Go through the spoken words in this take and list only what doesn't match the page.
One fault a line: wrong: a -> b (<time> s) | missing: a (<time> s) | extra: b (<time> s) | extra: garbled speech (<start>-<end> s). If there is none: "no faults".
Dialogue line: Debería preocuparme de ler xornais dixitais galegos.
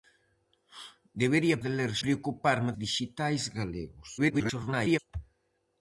missing: preocuparme (1.6 s)
wrong: xornais -> preocuparme (2.0 s)
extra: garbled speech (4.2-5.0 s)